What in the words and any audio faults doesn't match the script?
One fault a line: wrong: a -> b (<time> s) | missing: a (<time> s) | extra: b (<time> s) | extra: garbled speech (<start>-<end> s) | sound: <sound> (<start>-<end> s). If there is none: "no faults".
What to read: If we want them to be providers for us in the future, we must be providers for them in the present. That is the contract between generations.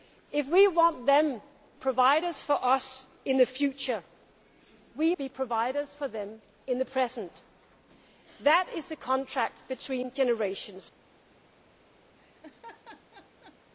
missing: to be (1.4 s)
missing: must (5.2 s)
sound: laugh (12.2-13.6 s)